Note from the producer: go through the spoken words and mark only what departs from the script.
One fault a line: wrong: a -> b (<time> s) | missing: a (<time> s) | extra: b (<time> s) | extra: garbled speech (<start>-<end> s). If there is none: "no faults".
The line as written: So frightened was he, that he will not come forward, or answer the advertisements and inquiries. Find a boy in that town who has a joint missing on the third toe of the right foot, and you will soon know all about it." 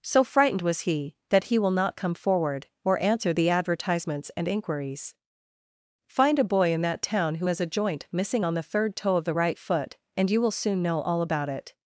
no faults